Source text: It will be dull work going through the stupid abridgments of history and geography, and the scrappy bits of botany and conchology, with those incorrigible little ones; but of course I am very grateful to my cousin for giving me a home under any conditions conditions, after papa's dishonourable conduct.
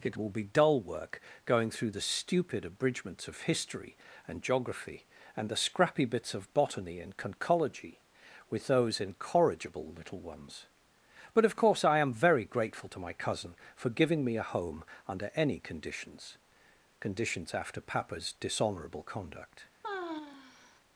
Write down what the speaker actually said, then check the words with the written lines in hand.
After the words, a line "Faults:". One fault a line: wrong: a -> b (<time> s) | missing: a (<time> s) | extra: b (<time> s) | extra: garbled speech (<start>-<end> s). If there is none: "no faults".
It will be dull work going through the stupid abridgments of history and geography, and the scrappy bits of botany and conchology, with those incorrigible little ones; but of course I am very grateful to my cousin for giving me a home under any conditions conditions, after papa's dishonourable conduct.
Faults:
no faults